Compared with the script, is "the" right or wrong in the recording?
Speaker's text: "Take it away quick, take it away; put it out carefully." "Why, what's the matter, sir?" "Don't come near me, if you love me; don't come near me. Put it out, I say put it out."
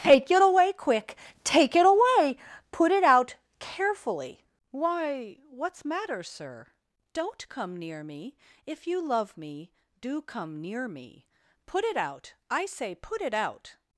wrong